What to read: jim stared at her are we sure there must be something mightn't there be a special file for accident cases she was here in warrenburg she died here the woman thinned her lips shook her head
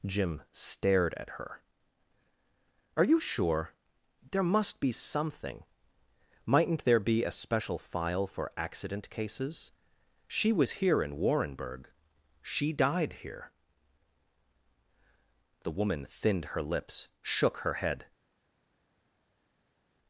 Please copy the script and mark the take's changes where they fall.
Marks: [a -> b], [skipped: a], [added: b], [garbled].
jim stared at her are [we -> you] sure there must be something mightn't there be a special file for accident cases she was here in warrenburg she died here the woman thinned her lips shook her head